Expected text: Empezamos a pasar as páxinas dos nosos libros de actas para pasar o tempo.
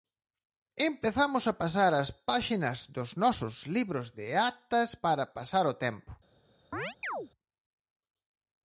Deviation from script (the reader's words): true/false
false